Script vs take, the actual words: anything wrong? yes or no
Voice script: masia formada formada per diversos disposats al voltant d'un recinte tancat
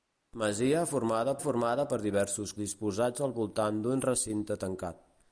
no